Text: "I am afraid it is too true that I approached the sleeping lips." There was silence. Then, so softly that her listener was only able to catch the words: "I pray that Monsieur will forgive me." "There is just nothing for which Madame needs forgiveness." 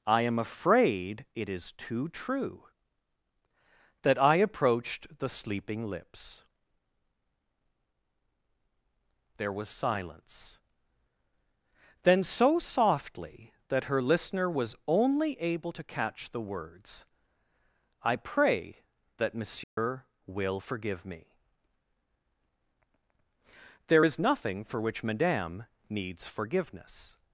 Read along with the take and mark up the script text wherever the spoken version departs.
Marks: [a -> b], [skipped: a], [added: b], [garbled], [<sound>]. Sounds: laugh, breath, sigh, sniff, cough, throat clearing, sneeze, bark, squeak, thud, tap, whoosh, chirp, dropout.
"I am afraid it is too true that I approached the sleeping lips." There was silence. Then, so softly that her listener was only able to catch the words: "I pray that Monsieur [dropout] will forgive me." "There is [skipped: just] nothing for which Madame needs forgiveness."